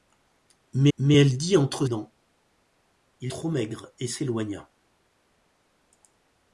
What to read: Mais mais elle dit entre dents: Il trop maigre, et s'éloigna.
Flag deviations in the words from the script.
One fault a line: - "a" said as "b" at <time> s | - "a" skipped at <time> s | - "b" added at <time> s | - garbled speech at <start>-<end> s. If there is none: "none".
none